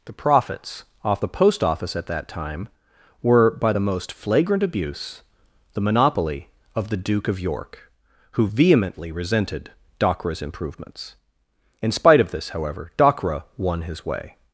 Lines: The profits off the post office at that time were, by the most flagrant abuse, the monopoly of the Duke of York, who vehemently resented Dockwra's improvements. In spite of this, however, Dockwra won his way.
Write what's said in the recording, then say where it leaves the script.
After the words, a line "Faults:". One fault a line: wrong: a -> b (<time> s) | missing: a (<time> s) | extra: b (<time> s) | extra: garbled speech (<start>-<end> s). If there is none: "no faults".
The profits off the post office at that time were, by the most flagrant abuse, the monopoly of the Duke of York, who vehemently resented Dockwra's improvements. In spite of this, however, Dockwra won his way.
Faults:
no faults